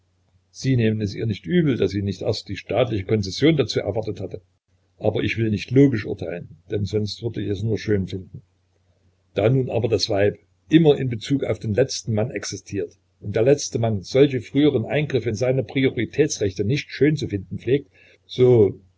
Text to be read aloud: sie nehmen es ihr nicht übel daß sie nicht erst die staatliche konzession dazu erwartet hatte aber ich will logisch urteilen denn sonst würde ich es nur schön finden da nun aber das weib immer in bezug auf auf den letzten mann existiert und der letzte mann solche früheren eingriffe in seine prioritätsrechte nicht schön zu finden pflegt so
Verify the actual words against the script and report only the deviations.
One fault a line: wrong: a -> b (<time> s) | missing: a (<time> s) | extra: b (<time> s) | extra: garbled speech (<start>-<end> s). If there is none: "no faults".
extra: nicht (5.5 s)
missing: auf (11.6 s)